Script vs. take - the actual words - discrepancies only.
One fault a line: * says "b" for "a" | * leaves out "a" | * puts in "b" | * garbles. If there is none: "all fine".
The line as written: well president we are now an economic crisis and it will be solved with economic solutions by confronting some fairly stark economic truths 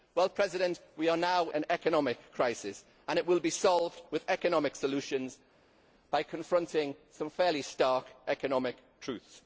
all fine